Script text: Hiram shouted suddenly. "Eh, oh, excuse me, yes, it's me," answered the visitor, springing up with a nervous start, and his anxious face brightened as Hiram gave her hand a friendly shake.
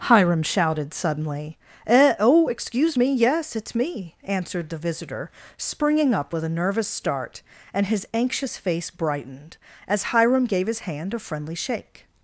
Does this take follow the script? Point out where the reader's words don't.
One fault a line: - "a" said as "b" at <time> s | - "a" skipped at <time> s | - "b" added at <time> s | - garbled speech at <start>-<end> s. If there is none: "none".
- "her" said as "his" at 10.7 s